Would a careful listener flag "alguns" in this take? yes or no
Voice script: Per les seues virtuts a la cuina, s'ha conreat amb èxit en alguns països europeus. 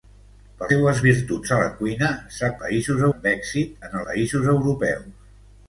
yes